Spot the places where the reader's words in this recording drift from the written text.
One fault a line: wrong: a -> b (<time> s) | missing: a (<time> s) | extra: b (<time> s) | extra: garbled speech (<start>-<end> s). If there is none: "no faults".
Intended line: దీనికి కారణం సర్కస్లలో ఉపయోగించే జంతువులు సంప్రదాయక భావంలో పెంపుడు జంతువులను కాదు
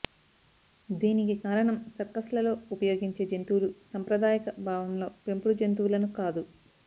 no faults